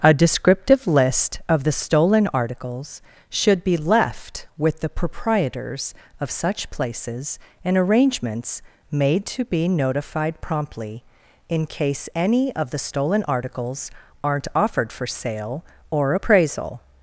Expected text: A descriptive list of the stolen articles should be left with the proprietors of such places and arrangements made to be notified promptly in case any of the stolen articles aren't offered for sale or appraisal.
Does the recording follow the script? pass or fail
pass